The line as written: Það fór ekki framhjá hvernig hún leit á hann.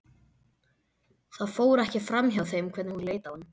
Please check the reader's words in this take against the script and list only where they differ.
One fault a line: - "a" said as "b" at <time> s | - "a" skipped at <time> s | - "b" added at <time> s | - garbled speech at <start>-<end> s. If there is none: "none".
- "þeim" added at 2.5 s